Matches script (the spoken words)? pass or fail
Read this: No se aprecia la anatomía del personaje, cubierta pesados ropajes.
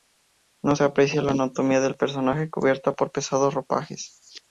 fail